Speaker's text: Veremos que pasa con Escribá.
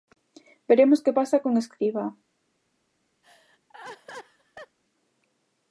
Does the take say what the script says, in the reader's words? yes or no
yes